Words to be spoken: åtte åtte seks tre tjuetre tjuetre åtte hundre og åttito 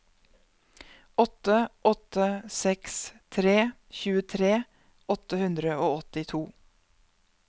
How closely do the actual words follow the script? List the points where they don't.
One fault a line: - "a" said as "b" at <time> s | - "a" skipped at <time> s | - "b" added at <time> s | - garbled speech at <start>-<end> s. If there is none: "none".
- "tjuetre" skipped at 4.5 s